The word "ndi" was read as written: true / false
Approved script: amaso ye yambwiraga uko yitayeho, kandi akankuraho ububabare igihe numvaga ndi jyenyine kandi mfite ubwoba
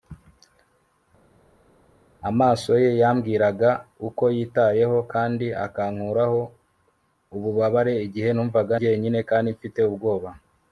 false